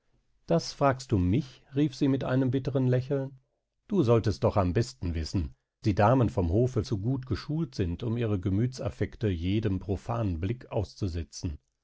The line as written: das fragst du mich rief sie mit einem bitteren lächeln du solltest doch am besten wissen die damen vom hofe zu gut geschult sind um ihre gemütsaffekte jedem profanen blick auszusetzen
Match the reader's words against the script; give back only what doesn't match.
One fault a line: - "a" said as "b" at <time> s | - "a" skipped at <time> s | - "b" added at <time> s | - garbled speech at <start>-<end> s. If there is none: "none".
none